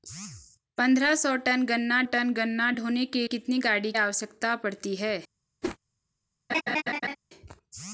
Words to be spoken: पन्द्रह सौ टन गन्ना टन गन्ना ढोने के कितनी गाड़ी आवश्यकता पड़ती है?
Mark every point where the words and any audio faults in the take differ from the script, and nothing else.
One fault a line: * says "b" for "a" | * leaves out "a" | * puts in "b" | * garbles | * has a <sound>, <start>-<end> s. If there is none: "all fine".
* has a whoosh, 5.6-5.8 s
* has a laugh, 6.5-7.2 s